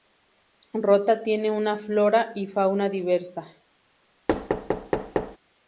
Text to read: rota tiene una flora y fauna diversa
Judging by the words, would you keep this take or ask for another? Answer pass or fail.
pass